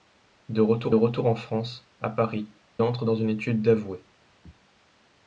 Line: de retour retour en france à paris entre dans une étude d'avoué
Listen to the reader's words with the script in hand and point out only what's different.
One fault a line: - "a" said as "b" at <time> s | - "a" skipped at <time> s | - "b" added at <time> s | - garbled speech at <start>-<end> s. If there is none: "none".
none